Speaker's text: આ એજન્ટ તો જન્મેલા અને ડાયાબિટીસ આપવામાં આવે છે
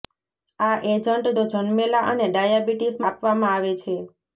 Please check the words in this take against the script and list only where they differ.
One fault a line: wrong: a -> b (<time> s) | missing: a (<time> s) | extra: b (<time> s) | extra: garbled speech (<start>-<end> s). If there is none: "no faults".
no faults